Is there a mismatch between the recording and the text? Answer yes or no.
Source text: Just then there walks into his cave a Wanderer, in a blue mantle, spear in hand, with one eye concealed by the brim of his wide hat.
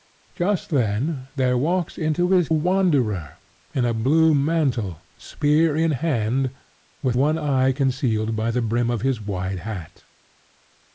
yes